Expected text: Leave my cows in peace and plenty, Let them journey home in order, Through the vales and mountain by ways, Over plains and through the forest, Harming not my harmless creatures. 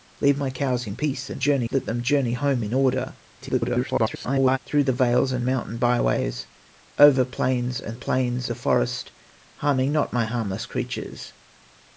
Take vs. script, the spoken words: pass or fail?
fail